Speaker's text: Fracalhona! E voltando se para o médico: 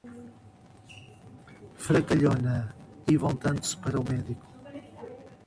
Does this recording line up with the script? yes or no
yes